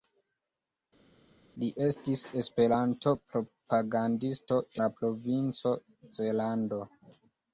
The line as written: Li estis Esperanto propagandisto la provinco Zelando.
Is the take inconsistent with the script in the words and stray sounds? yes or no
no